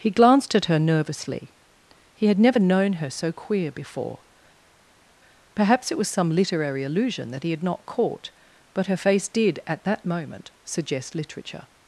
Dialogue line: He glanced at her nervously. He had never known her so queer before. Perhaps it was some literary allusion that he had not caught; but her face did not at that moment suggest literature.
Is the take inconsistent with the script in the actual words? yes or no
yes